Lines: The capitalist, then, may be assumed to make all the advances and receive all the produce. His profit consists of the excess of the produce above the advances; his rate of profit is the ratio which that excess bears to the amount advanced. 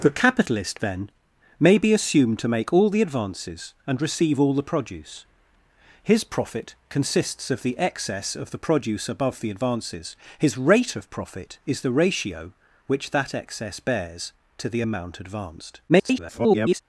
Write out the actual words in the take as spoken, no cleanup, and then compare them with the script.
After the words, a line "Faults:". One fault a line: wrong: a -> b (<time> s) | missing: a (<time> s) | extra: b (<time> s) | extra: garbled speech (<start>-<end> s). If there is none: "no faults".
The capitalist, then, may be assumed to make all the advances and receive all the produce. His profit consists of the excess of the produce above the advances; his rate of profit is the ratio which that excess bears to the amount advanced. [garbled]
Faults:
extra: garbled speech (15.9-16.8 s)